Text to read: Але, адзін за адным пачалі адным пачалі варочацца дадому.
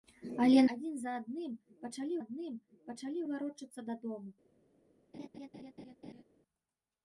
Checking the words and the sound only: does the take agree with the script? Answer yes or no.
no